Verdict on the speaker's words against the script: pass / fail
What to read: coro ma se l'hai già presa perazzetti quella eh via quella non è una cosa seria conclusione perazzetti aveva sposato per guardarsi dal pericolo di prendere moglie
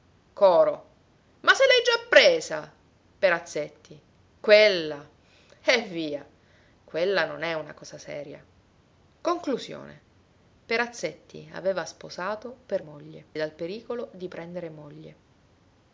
fail